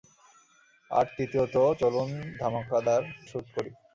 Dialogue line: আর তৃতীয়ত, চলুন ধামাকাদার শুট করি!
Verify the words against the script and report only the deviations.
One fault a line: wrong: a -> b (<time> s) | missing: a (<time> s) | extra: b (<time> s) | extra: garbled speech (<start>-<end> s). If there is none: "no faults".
no faults